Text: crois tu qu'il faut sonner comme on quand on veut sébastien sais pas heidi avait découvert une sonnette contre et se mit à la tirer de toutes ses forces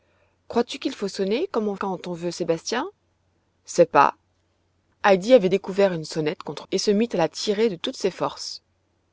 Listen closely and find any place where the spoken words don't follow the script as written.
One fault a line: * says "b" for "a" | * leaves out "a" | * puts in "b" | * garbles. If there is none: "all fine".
all fine